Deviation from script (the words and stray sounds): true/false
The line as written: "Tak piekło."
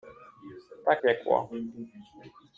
false